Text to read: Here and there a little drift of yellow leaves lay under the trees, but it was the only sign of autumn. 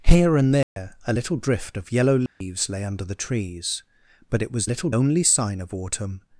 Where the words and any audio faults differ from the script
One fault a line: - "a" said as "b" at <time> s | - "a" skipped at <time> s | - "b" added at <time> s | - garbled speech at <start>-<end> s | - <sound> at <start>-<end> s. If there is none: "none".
- dropout at 0.6-0.8 s
- dropout at 2.3-2.4 s
- "the" said as "little" at 4.6 s